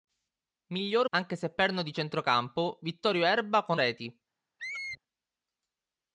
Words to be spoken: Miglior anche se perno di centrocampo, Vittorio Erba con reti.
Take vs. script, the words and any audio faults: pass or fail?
fail